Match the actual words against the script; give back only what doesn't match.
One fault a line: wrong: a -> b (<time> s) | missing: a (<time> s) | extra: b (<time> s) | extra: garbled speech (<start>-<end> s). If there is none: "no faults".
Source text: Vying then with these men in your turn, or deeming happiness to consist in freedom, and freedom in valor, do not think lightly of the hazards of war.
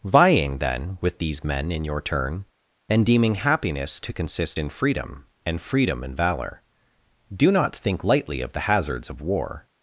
wrong: or -> and (2.9 s)